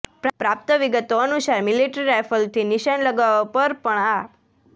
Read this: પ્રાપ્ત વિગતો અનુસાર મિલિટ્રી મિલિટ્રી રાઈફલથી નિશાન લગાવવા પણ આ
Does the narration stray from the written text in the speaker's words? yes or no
yes